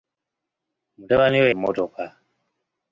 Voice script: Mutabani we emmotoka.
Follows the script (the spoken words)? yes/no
yes